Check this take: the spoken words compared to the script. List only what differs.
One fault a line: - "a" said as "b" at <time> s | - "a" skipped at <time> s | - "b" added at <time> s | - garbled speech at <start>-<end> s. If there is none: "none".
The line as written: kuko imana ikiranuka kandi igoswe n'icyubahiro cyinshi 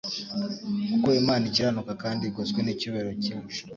none